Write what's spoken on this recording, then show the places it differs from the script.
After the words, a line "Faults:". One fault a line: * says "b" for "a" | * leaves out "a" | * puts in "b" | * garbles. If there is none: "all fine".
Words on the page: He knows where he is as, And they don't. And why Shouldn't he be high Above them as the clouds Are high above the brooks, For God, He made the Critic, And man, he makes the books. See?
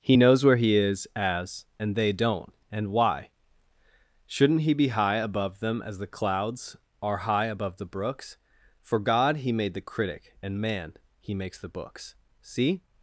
He knows where he is as, And they don't. And why Shouldn't he be high Above them as the clouds Are high above the brooks, For God, He made the Critic, And man, he makes the books. See?
Faults:
all fine